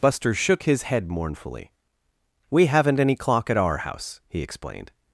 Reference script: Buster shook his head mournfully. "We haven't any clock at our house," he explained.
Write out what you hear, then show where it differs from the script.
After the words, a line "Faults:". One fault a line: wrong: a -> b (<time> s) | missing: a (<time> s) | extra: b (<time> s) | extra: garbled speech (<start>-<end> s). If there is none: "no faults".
Buster shook his head mournfully. "We haven't any clock at our house," he explained.
Faults:
no faults